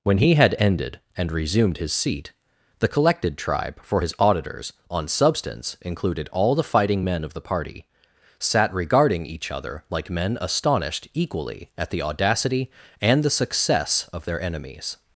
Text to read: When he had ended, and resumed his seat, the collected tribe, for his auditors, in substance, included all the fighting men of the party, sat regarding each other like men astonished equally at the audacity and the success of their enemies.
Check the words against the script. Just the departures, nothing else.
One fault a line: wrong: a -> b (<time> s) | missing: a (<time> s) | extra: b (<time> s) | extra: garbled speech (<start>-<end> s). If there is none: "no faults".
wrong: in -> on (4.9 s)